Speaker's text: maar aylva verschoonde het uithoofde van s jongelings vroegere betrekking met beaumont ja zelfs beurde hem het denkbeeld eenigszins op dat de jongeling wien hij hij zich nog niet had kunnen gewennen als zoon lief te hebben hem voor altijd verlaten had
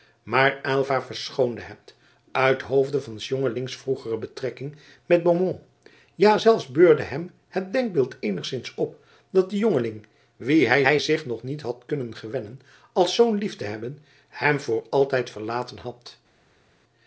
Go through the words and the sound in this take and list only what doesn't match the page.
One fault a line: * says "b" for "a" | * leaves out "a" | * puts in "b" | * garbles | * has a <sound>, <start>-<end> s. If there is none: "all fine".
all fine